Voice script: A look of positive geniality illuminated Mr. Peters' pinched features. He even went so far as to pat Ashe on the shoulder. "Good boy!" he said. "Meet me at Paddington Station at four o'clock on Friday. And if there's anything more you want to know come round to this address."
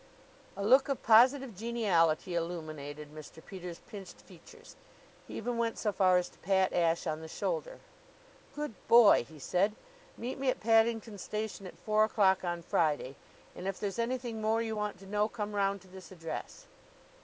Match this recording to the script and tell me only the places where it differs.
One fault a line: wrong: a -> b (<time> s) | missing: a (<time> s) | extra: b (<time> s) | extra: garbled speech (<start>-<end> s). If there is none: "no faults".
no faults